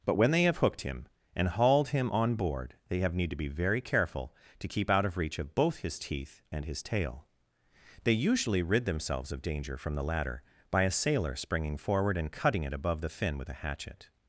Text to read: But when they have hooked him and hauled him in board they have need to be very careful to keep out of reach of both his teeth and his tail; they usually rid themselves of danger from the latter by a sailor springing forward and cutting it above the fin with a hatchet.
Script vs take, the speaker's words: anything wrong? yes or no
yes